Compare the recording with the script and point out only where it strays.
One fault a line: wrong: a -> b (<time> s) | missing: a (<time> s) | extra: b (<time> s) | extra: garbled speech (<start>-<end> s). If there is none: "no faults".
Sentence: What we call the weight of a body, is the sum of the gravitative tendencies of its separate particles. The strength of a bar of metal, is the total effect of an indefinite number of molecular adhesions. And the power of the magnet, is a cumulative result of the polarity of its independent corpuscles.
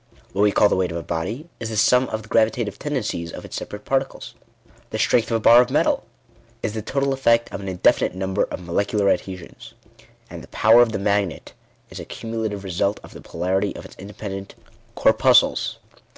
no faults